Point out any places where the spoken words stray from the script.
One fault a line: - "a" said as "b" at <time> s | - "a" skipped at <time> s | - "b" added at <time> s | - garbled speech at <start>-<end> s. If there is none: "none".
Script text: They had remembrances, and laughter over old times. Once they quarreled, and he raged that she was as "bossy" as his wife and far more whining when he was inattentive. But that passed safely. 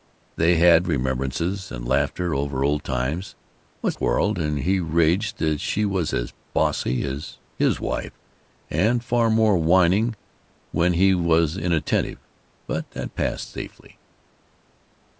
- "they" skipped at 3.9 s